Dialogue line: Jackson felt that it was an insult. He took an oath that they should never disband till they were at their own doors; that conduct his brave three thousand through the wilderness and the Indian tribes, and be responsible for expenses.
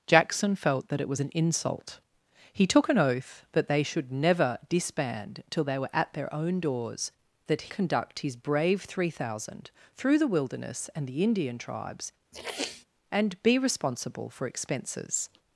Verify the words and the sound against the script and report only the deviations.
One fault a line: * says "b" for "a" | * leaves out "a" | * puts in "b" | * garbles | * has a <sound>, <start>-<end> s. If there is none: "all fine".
* has a sniff, 12.3-12.8 s